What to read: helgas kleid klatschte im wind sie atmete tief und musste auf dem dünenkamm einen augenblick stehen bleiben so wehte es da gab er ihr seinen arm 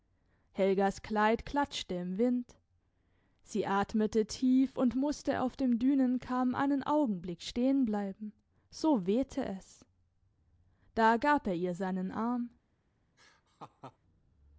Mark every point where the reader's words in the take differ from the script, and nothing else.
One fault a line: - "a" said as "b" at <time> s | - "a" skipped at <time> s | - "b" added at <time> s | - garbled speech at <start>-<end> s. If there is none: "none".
none